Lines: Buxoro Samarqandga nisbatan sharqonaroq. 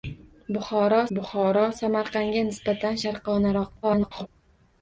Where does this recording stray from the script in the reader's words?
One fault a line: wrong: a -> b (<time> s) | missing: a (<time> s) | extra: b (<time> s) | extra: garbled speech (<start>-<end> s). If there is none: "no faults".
extra: buxoro (1.2 s)
extra: garbled speech (3.8-4.3 s)